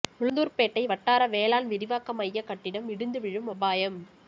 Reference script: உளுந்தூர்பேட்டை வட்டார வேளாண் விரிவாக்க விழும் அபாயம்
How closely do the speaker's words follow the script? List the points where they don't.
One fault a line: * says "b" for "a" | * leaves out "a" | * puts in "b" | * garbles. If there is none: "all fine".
* puts in "மைய கட்டிடம் இடிந்து"